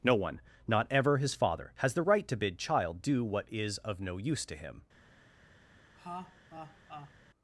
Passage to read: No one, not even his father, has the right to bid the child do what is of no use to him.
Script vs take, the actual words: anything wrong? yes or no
yes